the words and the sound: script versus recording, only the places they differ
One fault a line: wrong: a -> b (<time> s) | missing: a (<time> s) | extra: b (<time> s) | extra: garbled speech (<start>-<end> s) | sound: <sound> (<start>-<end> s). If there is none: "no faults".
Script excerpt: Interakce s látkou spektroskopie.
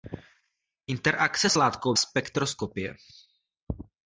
no faults